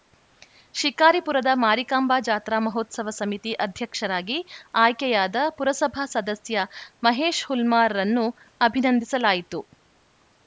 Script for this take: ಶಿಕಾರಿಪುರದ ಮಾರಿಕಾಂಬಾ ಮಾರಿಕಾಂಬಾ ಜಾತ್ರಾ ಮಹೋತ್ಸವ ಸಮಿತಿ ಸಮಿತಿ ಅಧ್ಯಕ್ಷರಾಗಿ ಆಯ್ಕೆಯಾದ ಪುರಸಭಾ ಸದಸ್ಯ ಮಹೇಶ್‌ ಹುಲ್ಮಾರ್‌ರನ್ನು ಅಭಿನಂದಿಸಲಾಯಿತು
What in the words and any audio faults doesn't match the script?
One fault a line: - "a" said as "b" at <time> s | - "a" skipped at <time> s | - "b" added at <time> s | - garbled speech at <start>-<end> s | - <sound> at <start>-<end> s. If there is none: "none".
- "ಮಾರಿಕಾಂಬಾ" skipped at 2.1 s
- "ಸಮಿತಿ" skipped at 3.5 s